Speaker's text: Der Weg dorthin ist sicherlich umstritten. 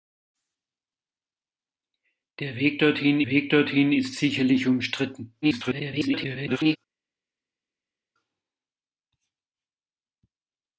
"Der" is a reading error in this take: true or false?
false